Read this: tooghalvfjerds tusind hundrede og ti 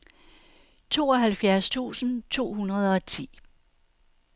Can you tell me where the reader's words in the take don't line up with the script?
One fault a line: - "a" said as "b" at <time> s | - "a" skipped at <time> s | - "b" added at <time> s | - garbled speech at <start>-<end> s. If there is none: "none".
- "to" added at 2.3 s